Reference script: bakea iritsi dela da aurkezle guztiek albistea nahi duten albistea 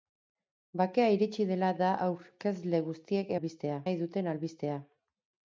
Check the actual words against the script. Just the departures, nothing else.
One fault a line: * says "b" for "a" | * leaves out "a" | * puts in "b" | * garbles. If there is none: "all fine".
all fine